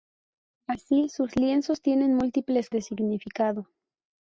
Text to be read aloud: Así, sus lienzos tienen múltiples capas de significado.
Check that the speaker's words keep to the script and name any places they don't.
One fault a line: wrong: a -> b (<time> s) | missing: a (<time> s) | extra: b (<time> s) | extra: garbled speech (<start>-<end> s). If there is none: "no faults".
missing: capas (2.7 s)